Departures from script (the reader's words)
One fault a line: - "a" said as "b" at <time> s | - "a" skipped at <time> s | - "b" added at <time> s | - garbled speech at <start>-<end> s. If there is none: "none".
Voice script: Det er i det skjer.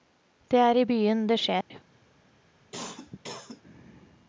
- "byen" added at 0.8 s